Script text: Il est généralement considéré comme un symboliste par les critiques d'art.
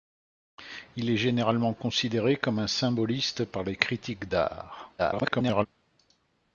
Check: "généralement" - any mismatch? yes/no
no